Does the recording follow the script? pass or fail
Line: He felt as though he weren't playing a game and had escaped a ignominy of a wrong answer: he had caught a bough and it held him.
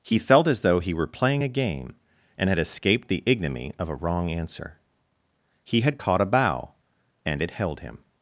fail